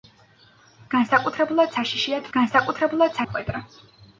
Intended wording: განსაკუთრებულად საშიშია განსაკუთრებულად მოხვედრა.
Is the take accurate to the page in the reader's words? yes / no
yes